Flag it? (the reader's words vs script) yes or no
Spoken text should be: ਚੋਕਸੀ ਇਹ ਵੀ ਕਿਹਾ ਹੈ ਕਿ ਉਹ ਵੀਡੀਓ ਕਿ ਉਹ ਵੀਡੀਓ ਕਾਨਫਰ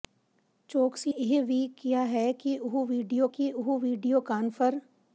no